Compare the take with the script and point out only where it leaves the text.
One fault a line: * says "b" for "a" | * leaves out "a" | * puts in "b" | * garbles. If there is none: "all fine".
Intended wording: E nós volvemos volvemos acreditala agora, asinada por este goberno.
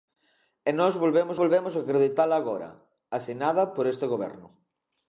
all fine